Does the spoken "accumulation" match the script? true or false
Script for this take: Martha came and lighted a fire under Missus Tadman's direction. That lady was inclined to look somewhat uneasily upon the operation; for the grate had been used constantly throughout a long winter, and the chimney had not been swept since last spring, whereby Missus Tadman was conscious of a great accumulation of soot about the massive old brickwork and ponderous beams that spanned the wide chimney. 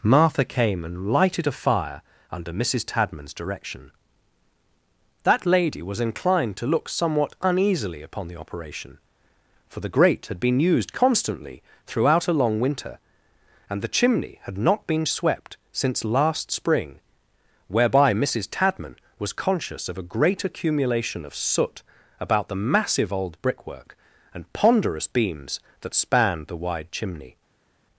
true